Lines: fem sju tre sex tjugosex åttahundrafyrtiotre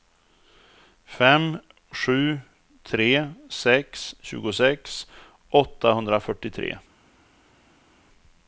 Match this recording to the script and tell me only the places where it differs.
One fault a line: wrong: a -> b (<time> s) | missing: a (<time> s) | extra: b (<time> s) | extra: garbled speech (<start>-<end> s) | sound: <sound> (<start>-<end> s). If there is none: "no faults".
no faults